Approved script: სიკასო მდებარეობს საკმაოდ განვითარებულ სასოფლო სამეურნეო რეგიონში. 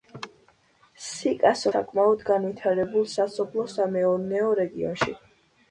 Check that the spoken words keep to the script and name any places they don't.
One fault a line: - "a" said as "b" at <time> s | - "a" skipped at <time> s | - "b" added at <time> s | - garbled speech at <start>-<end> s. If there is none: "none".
- "მდებარეობს" skipped at 1.7 s